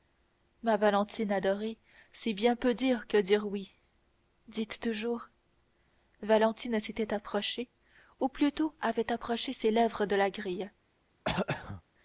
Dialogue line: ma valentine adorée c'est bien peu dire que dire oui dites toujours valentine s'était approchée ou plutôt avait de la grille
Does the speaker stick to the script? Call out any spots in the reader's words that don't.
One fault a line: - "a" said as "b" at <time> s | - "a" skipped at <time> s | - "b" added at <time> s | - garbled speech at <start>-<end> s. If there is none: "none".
- "approché ses lèvres" added at 9.1 s